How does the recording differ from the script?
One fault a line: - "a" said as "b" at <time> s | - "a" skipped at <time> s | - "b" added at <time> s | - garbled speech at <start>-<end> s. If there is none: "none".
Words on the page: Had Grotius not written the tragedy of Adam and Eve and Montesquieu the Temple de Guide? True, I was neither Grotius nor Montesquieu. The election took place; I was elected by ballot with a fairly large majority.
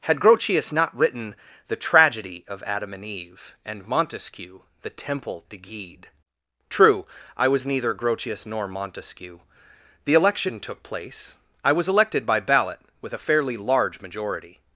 none